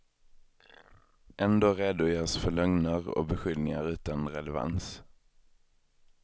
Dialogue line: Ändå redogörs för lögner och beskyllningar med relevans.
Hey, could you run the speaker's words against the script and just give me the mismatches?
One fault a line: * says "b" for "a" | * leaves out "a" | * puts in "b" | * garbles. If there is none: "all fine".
* says "utan" for "med"